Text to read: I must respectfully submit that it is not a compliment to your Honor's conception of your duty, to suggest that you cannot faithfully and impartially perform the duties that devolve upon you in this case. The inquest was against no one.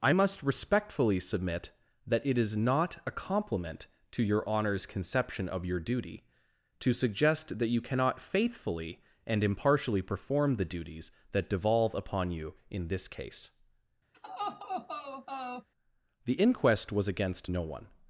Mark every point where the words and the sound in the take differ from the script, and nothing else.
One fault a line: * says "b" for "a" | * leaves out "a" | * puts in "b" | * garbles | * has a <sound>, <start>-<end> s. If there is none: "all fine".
* has a laugh, 14.1-15.7 s